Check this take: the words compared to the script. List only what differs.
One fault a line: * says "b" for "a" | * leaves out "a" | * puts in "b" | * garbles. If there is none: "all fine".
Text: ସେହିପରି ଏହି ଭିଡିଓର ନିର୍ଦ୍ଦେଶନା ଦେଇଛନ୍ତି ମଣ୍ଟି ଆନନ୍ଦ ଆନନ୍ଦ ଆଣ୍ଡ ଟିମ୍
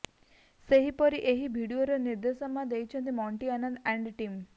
* leaves out "ଆନନ୍ଦ"